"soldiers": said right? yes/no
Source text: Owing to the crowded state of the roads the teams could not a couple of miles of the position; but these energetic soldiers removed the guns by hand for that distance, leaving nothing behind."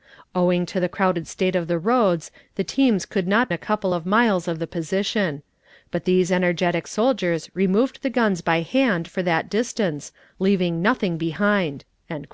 yes